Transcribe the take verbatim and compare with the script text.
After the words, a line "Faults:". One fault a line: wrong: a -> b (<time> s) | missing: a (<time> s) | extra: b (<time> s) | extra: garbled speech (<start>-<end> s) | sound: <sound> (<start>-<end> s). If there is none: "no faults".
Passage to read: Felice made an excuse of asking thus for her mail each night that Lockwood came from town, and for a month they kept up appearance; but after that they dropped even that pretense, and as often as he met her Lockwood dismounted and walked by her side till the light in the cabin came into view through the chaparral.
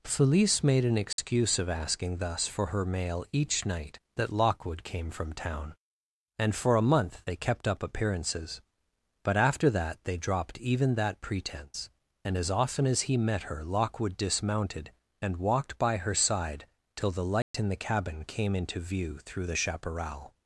Felice made an excuse of asking thus for her mail each night that Lockwood came from town, and for a month they kept up appearances; but after that they dropped even that pretense, and as often as he met her Lockwood dismounted and walked by her side till the light in the cabin came into view through the chaparral.
Faults:
sound: dropout (1.1-1.2 s)
wrong: appearance -> appearances (7.8 s)
sound: dropout (17.4-17.5 s)